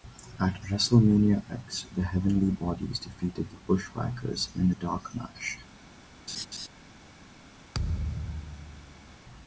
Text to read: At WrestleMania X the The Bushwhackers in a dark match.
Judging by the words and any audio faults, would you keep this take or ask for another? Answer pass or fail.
fail